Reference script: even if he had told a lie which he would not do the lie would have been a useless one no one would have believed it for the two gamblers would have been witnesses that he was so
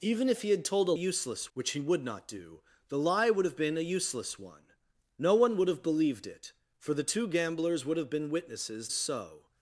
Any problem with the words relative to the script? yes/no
yes